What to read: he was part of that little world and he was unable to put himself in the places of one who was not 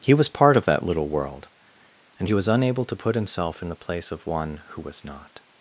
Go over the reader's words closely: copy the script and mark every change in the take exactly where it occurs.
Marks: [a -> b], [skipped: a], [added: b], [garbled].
he was part of that little world and he was unable to put himself in the [places -> place] of one who was not